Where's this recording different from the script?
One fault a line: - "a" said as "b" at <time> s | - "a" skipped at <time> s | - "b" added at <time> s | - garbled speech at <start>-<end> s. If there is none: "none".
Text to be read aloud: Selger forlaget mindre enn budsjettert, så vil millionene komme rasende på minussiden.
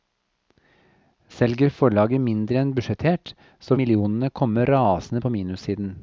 - "vil" skipped at 3.8 s